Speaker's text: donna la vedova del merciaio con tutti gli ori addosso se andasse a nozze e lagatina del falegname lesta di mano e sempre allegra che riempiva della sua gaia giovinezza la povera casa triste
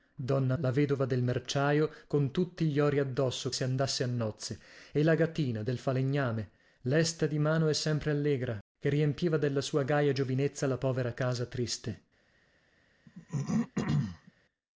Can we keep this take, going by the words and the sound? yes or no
no